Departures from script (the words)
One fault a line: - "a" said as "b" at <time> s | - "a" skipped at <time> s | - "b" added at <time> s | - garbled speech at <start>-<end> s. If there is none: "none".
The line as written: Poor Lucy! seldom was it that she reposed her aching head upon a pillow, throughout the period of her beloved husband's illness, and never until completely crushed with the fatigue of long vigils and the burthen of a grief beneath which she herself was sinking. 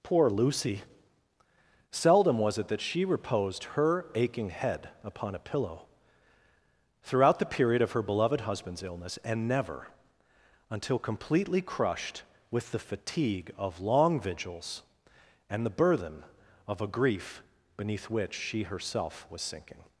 none